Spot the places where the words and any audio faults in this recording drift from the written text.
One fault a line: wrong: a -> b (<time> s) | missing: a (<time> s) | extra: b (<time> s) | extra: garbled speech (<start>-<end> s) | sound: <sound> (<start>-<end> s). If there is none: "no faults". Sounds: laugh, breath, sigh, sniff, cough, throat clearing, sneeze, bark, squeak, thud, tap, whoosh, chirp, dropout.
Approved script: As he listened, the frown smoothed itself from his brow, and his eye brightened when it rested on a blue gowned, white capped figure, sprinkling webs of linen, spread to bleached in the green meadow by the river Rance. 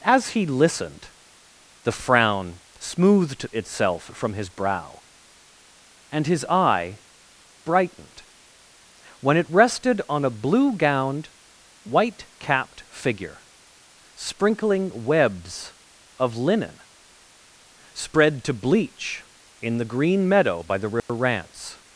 wrong: bleached -> bleach (18.6 s)
sound: dropout (21.0-21.1 s)